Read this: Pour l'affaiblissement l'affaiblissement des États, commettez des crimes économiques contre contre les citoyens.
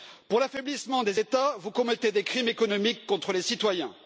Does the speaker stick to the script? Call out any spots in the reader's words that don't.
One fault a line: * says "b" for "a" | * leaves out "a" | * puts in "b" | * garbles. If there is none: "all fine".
* leaves out "l'affaiblissement"
* puts in "vous"
* leaves out "contre"